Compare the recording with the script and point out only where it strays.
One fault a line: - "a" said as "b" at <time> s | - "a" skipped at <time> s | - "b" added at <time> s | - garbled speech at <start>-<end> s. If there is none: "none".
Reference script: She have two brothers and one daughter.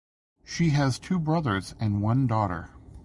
- "have" said as "has" at 0.7 s